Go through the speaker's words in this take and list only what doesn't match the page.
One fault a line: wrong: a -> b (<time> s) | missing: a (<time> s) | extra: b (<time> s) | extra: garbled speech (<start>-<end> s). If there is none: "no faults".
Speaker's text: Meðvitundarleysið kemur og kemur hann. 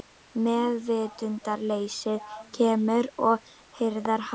wrong: kemur -> hirðir (3.8 s)